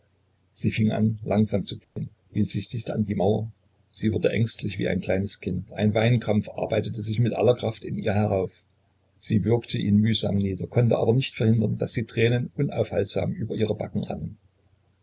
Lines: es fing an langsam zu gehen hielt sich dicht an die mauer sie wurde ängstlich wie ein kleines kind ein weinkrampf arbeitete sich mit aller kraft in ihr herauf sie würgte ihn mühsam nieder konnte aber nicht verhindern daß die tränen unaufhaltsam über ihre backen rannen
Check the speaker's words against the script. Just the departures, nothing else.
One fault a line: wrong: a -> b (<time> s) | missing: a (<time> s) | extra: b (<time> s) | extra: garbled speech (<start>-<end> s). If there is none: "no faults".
wrong: es -> sie (0.5 s)